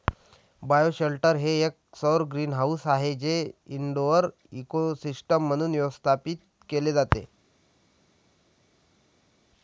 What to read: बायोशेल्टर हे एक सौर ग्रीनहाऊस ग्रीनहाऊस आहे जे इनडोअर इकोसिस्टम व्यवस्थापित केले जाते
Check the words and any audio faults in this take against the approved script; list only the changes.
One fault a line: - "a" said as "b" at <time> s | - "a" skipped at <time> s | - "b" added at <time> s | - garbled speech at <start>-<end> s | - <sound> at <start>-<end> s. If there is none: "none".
- "ग्रीनहाऊस" skipped at 2.9 s
- "म्हणून" added at 5.5 s